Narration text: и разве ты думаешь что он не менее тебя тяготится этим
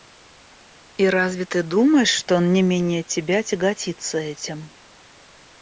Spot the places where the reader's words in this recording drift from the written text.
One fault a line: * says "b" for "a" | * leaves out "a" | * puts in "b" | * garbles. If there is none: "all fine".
all fine